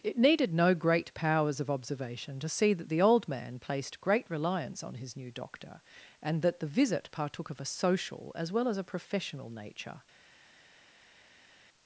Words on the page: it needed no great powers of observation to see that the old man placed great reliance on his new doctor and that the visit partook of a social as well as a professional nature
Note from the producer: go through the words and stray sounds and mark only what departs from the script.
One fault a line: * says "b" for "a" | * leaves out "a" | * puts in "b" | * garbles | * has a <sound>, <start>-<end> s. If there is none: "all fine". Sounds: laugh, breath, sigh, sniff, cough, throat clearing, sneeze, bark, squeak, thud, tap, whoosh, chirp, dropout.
all fine